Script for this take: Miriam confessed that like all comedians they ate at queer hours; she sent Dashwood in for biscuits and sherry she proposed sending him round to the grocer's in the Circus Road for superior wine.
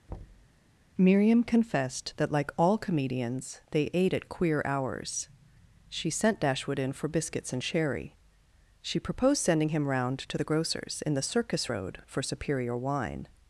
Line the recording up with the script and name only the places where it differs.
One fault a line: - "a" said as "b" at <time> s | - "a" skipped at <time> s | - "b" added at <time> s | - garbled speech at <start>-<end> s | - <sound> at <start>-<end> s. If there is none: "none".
- thud at 0.1-0.5 s